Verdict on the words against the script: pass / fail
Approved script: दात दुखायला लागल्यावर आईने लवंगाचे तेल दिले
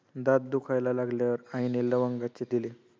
fail